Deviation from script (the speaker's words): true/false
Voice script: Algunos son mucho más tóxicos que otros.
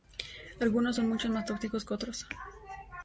false